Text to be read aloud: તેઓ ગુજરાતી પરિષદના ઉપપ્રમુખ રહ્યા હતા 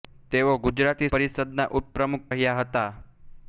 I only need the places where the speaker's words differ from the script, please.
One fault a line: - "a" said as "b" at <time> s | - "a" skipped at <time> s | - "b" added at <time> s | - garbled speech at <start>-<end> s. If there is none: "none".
none